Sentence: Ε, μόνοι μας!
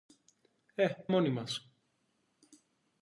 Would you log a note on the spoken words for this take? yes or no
no